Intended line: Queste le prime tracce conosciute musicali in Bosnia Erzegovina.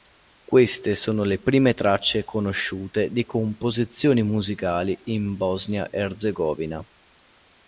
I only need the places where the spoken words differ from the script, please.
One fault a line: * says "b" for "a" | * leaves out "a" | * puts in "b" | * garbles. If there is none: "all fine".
* puts in "sono"
* puts in "di composizioni"